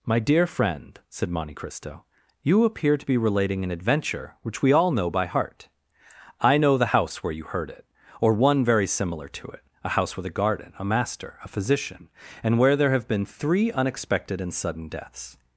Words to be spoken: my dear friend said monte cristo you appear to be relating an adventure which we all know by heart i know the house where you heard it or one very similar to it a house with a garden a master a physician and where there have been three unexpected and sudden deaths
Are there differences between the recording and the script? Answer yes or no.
no